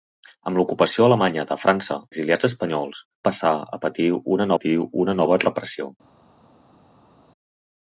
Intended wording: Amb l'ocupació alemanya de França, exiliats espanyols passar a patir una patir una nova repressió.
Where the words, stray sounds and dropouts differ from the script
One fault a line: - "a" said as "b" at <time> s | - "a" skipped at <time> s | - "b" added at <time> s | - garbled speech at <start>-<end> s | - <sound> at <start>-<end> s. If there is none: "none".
none